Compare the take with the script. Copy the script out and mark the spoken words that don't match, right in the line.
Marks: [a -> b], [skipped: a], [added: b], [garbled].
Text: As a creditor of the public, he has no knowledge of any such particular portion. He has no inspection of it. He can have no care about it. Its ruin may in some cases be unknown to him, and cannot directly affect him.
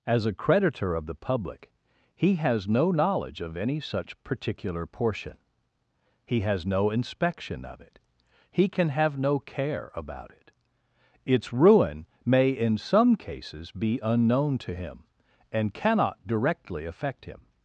As a creditor of the public, he has no knowledge of any such particular portion. He has no inspection of it. He can have no care about it. Its ruin may in some cases be unknown to him, and cannot directly affect him.